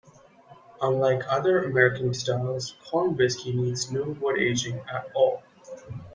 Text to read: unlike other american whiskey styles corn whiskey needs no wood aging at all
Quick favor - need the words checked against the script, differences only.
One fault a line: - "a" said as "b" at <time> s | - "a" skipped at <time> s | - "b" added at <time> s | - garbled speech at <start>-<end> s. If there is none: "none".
- "whiskey" skipped at 2.1 s